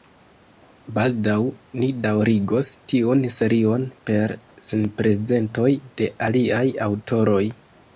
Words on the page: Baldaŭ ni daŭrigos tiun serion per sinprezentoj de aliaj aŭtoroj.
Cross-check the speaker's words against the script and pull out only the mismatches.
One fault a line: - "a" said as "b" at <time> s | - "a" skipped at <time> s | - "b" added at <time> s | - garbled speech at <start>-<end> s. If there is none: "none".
none